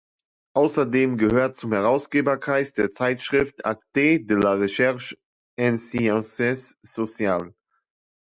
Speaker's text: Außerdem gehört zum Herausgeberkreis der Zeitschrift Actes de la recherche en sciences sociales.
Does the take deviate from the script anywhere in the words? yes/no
no